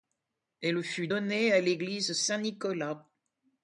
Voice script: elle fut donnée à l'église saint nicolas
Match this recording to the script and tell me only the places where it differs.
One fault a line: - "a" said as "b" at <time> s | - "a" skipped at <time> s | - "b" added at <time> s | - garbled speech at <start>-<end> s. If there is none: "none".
none